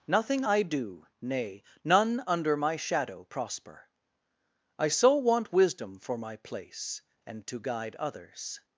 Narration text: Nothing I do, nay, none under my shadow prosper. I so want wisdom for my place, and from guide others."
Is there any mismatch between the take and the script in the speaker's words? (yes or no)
yes